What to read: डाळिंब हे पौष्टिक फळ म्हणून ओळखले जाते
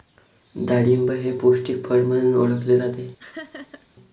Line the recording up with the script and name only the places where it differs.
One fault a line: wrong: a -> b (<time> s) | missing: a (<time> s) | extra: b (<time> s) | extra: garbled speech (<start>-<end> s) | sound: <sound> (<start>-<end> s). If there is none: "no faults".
sound: laugh (3.2-3.9 s)